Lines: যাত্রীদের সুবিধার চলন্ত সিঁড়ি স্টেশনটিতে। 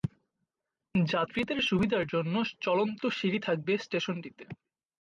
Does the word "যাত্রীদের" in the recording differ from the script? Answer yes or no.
no